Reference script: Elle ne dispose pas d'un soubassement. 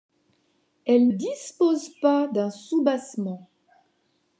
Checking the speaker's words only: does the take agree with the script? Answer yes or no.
no